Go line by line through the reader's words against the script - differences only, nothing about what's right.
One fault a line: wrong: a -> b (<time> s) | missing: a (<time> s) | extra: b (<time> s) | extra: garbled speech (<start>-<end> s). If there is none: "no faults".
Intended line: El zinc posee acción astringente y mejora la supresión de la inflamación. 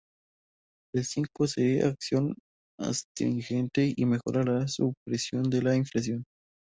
no faults